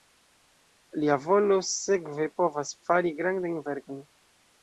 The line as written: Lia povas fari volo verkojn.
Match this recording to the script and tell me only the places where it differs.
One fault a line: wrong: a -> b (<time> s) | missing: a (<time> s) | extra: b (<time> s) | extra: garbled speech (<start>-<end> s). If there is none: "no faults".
extra: volo sekve (1.2 s)
wrong: volo -> grandajn (3.2 s)